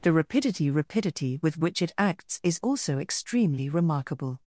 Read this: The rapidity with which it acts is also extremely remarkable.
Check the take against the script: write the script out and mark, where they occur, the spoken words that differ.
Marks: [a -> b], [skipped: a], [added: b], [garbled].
The rapidity [added: rapidity] with which it acts is also extremely remarkable.